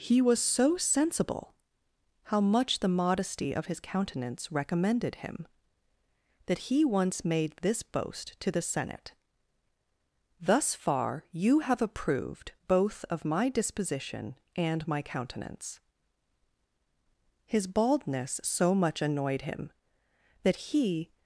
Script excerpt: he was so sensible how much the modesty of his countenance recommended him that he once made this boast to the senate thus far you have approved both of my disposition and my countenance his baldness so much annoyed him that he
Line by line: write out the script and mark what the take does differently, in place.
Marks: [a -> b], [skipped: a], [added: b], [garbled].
he was so sensible how much the modesty of his countenance recommended him that he once made this boast to the senate thus far you have approved both of my disposition and my countenance his baldness so much annoyed him that he